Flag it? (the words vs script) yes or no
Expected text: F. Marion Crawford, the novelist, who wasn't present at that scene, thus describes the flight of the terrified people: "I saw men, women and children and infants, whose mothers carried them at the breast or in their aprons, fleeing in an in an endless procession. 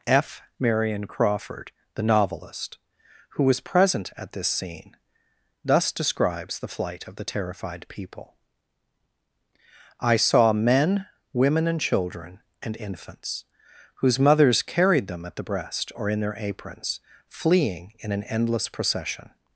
yes